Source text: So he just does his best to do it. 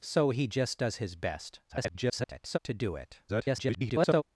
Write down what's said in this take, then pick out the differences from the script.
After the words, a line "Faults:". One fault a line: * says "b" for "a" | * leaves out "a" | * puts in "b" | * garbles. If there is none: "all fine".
So he just does his best [garbled] to do it. [garbled]
Faults:
* garbles
* garbles